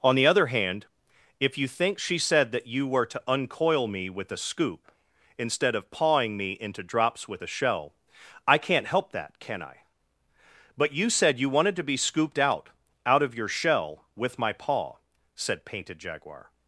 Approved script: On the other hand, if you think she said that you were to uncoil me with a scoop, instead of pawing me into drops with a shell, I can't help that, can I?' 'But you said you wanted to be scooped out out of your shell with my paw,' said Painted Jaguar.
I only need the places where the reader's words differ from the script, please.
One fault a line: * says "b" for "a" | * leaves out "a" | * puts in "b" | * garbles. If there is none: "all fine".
all fine